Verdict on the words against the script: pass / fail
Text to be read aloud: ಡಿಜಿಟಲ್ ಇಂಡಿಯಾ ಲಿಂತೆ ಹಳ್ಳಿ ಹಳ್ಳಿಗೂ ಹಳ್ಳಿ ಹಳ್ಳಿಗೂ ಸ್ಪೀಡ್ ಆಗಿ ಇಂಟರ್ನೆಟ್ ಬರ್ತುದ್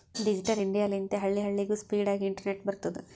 fail